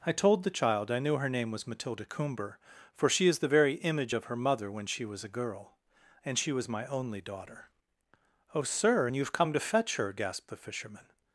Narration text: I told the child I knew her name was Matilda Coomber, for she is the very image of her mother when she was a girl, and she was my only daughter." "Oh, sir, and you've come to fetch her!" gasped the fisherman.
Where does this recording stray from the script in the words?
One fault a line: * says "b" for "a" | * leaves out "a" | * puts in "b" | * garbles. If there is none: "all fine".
all fine